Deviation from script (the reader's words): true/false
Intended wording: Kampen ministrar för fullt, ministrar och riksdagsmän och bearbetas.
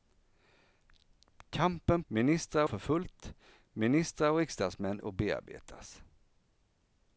false